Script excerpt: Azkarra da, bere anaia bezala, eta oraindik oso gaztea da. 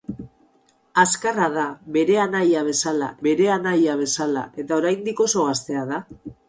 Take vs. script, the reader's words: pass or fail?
fail